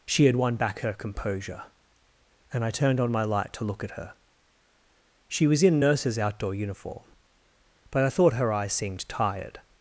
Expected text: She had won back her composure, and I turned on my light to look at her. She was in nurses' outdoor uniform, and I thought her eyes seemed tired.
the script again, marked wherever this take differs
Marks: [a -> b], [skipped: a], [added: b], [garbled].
She had won back her composure, and I turned on my light to look at her. She was in nurses' outdoor uniform, [and -> but] I thought her eyes seemed tired.